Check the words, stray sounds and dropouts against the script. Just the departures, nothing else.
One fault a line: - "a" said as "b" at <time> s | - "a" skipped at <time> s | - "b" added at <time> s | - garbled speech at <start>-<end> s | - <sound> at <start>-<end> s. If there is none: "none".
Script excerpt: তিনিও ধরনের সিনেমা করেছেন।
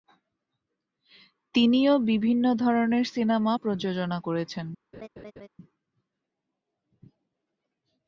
- "বিভিন্ন" added at 2.0 s
- "প্রযোজনা" added at 3.5 s
- laugh at 4.9-5.5 s